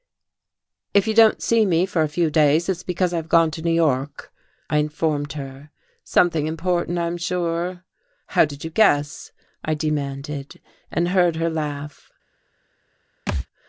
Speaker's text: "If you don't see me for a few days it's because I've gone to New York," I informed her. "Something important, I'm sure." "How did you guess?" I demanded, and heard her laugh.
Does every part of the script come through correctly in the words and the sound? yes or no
no